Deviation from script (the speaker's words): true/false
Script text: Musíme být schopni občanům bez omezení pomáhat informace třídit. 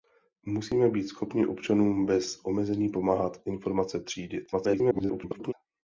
true